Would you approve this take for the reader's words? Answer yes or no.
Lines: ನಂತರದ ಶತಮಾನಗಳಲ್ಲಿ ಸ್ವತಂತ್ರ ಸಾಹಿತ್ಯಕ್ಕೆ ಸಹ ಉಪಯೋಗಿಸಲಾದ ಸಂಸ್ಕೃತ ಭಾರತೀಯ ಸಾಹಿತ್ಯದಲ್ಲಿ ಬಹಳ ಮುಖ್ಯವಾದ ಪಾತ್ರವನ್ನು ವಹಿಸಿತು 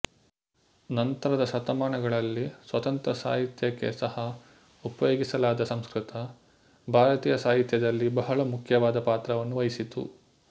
yes